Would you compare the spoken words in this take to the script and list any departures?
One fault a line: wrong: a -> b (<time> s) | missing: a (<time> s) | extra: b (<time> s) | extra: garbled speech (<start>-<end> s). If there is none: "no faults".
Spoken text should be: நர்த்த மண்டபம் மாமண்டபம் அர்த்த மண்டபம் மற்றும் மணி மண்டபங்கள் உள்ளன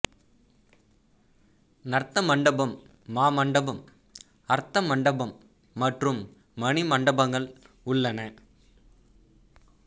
no faults